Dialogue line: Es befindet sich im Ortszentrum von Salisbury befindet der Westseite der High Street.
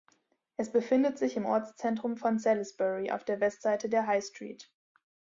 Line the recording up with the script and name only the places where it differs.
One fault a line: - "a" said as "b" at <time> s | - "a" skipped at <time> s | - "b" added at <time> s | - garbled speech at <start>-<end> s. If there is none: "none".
- "befindet" said as "auf" at 3.1 s